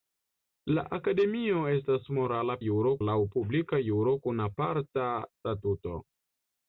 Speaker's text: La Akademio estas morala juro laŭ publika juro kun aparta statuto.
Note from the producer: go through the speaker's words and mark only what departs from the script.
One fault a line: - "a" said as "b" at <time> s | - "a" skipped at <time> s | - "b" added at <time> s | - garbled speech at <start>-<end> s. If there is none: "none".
none